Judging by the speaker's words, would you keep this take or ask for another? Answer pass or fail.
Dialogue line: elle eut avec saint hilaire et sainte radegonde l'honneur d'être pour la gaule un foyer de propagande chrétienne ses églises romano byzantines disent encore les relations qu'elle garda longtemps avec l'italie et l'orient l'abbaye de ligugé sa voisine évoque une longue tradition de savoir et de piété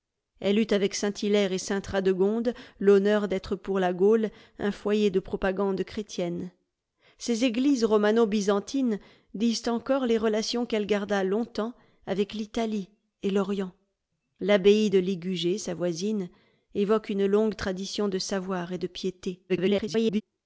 fail